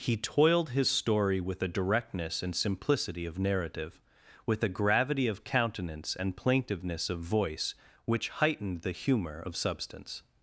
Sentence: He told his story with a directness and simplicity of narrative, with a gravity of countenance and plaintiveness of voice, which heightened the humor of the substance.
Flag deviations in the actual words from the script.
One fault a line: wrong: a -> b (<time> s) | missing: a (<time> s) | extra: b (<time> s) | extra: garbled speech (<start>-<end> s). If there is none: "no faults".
wrong: told -> toiled (0.2 s)
missing: the (9.6 s)